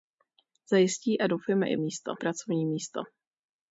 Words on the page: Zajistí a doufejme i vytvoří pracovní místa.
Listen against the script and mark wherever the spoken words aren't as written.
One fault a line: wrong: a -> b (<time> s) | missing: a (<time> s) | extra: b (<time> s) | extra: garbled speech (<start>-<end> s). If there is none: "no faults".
wrong: vytvoří -> místa (1.8 s)